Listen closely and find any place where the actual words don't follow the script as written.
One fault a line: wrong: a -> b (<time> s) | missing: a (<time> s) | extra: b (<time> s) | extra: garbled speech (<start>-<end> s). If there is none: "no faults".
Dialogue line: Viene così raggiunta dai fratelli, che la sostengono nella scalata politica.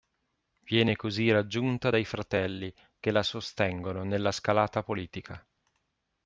no faults